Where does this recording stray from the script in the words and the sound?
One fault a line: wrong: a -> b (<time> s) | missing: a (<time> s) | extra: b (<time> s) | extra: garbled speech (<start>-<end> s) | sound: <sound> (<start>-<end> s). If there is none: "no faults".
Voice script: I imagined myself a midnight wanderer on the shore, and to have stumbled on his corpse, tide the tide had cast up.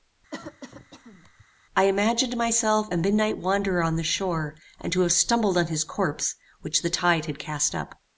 sound: cough (0.3-1.5 s)
wrong: tide -> which (6.6 s)